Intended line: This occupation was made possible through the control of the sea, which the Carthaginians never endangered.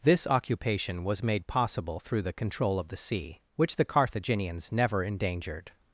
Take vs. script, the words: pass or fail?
pass